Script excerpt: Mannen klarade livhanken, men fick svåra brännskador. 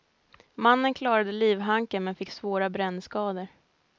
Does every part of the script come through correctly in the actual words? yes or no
yes